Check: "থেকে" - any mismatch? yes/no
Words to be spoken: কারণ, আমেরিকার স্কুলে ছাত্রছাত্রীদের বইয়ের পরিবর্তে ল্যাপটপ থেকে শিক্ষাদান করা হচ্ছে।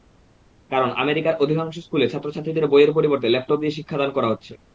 yes